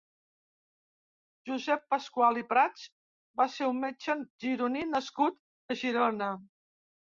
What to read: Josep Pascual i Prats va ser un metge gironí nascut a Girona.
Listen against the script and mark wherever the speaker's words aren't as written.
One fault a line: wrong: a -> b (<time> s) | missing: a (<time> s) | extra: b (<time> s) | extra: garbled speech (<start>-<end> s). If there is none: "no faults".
no faults